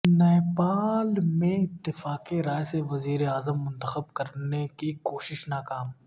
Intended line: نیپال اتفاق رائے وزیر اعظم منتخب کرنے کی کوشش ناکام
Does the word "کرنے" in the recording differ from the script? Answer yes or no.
no